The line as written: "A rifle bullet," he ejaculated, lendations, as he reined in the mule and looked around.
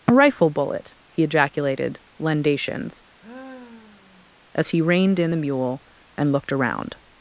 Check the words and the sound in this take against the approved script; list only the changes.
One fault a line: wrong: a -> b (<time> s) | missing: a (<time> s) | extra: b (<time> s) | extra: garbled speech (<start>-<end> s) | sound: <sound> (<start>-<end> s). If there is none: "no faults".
sound: sigh (3.2-4.4 s)